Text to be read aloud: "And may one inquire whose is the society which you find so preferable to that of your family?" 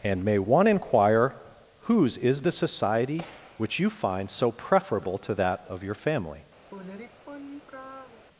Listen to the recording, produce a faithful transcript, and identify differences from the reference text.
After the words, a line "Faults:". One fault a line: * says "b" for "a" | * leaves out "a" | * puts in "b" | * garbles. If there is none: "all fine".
"And may one inquire whose is the society which you find so preferable to that of your family?"
Faults:
all fine